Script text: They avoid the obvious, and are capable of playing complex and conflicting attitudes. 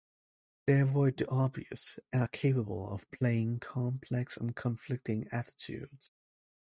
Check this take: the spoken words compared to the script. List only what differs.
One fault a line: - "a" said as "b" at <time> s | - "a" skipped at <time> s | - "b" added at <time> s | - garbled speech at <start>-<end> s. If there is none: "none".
none